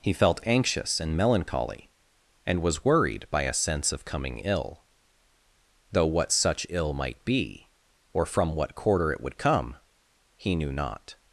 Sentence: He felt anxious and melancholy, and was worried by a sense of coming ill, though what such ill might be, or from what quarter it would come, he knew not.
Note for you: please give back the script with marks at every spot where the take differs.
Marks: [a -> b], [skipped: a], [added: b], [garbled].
He felt anxious and melancholy, and was worried by a sense of coming ill, though what such ill might be, or from what quarter it would come, he knew not.